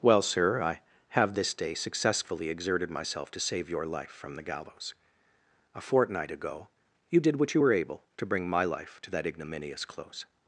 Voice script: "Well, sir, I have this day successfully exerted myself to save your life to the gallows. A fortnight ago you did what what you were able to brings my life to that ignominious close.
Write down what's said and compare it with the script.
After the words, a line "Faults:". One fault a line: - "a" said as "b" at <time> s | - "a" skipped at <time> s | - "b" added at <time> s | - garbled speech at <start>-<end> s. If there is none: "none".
"Well, sir, I have this day successfully exerted myself to save your life from the gallows. A fortnight ago you did what you were able to bring my life to that ignominious close.
Faults:
- "to" said as "from" at 4.1 s
- "what" skipped at 7.5 s
- "brings" said as "bring" at 8.3 s